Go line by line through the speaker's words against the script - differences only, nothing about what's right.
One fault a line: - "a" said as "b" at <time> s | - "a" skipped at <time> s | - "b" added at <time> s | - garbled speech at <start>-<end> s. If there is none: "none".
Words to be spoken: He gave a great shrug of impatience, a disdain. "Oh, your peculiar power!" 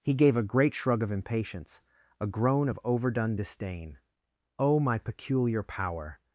- "groan of overdone" added at 2.3 s
- "your" said as "my" at 4.8 s